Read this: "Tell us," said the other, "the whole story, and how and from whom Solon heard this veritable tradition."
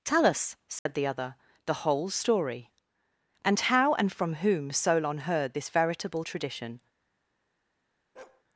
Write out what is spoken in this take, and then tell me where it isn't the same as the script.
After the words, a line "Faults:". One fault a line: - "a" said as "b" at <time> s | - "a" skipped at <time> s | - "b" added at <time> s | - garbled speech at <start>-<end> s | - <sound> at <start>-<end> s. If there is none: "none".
"Tell us," said the other, "the whole story, and how and from whom Solon heard this veritable tradition."
Faults:
- dropout at 0.8-0.9 s
- bark at 8.1-8.4 s